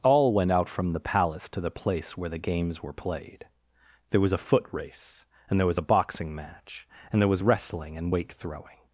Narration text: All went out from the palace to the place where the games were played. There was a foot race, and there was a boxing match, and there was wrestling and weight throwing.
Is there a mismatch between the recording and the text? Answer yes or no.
no